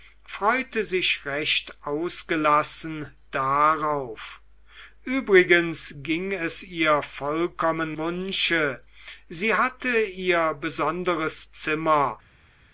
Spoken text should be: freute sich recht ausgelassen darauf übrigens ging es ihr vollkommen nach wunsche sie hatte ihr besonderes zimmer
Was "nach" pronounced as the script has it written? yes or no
no